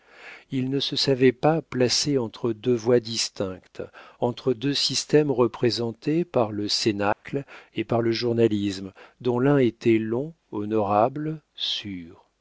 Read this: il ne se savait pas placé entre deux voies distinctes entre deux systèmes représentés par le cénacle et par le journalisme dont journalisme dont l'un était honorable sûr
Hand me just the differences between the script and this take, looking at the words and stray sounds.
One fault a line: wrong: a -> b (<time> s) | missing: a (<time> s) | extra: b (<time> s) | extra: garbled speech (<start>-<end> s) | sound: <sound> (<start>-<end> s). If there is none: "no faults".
sound: dropout (7.1-7.2 s)
missing: journalisme dont (9.4 s)
extra: long (10.0 s)